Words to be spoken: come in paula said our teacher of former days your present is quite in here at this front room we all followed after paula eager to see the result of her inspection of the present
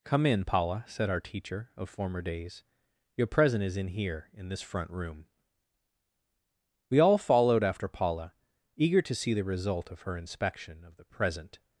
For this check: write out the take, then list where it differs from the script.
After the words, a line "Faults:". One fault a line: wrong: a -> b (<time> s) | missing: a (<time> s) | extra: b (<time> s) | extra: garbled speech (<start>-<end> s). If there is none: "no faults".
come in paula said our teacher of former days your present is in here in this front room we all followed after paula eager to see the result of her inspection of the present
Faults:
missing: quite (3.8 s)
wrong: at -> in (4.3 s)